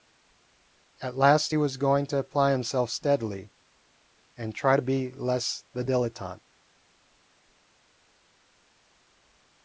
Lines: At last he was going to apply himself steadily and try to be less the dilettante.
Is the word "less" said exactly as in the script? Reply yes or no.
yes